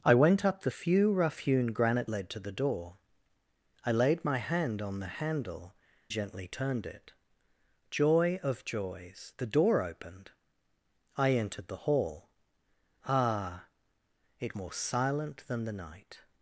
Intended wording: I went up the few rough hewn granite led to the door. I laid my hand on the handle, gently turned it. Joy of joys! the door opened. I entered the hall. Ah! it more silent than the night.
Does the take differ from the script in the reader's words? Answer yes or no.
no